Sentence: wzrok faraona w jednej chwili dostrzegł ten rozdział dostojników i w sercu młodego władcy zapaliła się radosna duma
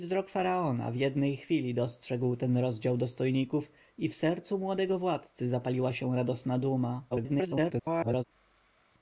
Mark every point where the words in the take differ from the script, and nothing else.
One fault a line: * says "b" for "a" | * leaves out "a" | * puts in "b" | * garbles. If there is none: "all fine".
* garbles